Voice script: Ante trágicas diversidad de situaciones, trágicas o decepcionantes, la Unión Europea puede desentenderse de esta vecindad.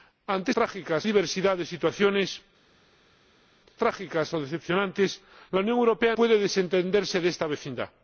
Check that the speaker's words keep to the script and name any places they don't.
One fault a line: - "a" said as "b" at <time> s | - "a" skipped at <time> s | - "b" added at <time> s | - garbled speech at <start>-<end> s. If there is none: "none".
none